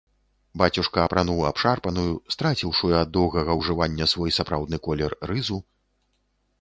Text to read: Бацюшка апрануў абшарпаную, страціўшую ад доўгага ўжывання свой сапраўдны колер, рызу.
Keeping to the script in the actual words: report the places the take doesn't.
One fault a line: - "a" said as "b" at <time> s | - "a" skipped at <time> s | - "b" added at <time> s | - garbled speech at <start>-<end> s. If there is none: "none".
none